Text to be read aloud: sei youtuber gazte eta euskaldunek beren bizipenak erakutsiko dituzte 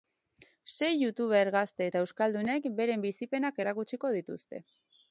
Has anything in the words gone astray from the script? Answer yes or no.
no